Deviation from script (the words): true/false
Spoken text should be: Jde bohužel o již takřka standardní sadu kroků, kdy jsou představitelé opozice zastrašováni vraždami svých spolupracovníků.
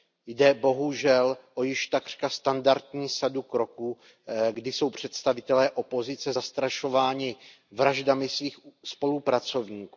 false